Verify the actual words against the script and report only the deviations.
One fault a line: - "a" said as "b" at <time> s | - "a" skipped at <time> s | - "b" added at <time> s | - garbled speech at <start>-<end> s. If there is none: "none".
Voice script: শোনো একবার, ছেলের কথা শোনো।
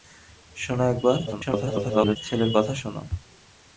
- garbled speech at 1.3-2.2 s